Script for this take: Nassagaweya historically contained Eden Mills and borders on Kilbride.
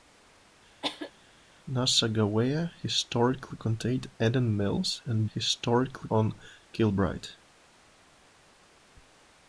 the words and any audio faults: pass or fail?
fail